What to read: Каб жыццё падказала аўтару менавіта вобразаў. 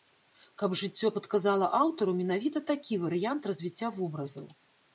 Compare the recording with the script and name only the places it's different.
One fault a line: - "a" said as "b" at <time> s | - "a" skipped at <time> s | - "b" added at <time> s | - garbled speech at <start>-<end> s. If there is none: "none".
- "такі варыянт развіцця" added at 2.7 s